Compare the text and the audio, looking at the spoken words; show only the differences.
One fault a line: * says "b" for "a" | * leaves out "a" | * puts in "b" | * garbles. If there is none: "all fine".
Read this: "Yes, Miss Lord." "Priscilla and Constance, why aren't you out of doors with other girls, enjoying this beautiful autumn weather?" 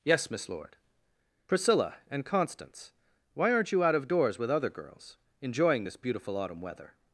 all fine